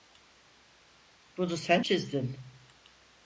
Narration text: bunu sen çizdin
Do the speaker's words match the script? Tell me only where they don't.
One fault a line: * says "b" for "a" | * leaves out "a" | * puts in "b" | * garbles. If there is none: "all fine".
all fine